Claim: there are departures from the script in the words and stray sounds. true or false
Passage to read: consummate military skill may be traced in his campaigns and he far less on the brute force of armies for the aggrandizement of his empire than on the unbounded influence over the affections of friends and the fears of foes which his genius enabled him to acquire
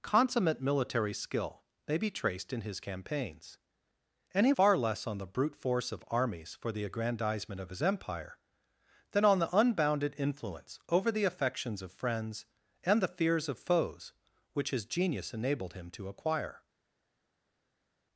false